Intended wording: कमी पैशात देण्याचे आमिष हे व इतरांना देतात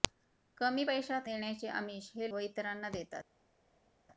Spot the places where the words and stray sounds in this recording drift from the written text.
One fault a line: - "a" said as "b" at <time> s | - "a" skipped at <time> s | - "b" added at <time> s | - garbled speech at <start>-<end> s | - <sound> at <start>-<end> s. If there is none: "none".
none